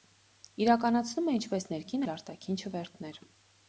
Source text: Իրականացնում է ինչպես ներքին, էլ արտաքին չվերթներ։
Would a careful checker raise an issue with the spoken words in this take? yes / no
no